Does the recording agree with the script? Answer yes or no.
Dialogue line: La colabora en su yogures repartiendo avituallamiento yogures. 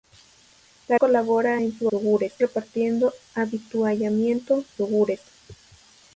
yes